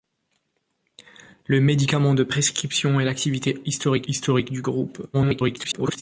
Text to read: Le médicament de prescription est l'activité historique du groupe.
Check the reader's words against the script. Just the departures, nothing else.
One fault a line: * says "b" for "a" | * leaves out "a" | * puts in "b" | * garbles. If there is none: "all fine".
* puts in "historique"
* garbles